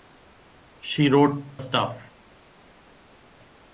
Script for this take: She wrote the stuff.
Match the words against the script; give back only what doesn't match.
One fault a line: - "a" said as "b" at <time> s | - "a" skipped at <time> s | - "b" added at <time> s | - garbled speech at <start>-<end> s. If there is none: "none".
- "the" skipped at 1.6 s